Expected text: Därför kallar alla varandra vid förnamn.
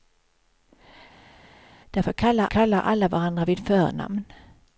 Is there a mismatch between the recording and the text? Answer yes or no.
yes